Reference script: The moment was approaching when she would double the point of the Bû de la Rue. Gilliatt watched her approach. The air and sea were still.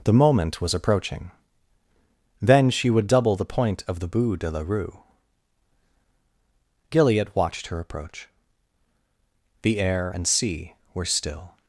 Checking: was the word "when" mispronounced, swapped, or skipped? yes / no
yes